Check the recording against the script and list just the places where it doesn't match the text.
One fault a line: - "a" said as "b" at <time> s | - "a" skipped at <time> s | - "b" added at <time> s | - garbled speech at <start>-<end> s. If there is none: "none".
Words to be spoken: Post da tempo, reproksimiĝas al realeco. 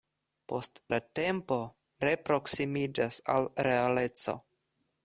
none